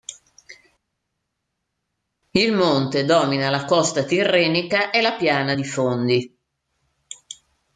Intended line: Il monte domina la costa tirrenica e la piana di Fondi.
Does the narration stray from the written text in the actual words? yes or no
no